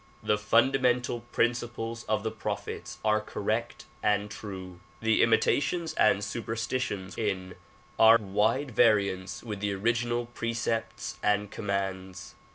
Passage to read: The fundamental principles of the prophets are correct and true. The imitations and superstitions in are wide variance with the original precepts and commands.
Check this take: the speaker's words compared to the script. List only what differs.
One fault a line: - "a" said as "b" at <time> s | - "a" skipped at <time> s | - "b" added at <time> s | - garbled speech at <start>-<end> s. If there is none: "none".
none